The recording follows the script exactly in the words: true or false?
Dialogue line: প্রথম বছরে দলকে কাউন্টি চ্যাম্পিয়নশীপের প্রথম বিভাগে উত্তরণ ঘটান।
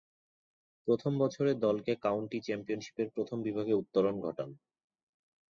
true